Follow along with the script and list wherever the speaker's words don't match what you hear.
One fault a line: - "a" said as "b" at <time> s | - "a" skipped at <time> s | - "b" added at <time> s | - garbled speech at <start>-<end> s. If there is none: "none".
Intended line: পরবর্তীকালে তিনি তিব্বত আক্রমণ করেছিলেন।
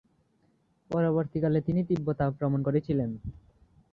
none